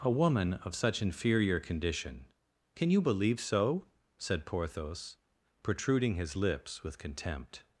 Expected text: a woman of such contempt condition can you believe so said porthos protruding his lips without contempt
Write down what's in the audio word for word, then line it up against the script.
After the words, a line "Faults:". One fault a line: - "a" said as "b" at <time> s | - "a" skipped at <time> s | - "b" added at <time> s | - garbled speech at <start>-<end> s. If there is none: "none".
a woman of such inferior condition can you believe so said porthos protruding his lips with contempt
Faults:
- "contempt" said as "inferior" at 1.0 s
- "without" said as "with" at 6.8 s